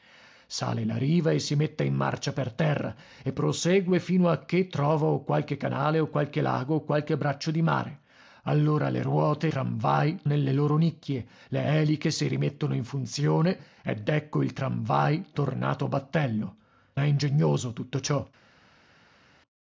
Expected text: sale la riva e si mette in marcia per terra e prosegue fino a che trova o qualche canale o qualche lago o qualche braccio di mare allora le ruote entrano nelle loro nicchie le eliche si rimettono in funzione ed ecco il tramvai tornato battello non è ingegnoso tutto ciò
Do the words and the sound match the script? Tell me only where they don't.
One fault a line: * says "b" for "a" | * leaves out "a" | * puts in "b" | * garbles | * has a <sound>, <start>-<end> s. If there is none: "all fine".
* says "tramvai" for "entrano"
* leaves out "non"